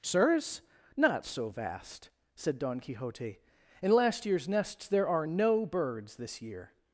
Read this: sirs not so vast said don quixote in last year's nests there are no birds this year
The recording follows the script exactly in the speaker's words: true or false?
true